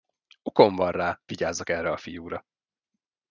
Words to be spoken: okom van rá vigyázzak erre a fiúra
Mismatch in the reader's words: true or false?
false